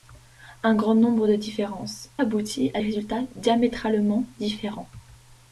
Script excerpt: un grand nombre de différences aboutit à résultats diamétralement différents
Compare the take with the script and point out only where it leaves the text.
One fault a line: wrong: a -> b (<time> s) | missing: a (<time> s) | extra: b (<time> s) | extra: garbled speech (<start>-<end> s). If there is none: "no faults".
no faults